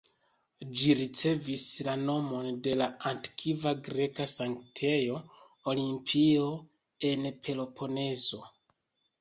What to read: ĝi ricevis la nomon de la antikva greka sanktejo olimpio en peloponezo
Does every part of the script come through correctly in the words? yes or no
yes